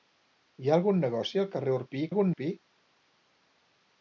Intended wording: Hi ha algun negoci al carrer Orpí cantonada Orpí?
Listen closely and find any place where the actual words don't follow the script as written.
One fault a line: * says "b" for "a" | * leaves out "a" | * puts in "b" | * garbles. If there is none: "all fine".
* says "algun" for "cantonada"